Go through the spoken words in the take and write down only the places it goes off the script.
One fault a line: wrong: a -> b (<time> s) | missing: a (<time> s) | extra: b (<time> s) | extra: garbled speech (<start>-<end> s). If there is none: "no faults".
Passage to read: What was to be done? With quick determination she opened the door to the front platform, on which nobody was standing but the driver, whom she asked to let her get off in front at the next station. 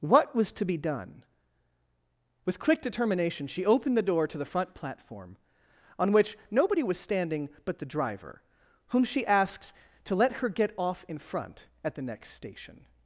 no faults